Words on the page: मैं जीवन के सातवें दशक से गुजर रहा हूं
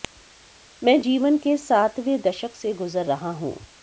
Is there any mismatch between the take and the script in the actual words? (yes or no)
no